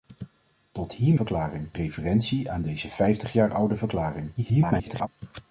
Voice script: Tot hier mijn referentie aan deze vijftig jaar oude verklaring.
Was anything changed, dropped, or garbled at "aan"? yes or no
no